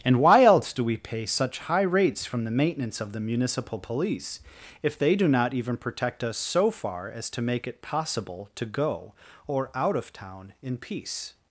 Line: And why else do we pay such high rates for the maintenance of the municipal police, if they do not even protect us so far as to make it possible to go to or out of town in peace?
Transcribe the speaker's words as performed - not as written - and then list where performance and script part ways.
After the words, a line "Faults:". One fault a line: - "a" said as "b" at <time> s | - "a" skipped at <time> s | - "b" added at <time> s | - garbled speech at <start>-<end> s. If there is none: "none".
And why else do we pay such high rates from the maintenance of the municipal police, if they do not even protect us so far as to make it possible to go or out of town in peace?
Faults:
- "for" said as "from" at 2.2 s
- "to" skipped at 9.1 s